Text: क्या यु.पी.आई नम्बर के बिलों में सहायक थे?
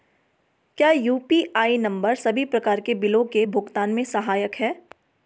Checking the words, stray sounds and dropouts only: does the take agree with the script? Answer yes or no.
no